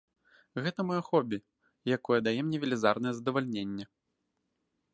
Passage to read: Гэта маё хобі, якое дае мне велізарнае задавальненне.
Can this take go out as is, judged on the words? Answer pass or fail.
pass